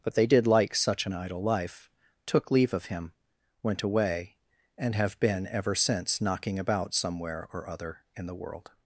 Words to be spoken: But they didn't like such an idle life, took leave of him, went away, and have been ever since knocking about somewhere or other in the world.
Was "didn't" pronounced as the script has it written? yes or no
no